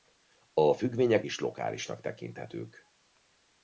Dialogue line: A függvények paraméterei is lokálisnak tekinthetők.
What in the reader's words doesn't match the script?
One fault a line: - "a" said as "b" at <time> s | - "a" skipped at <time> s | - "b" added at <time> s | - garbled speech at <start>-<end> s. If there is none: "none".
- "paraméterei" skipped at 1.2 s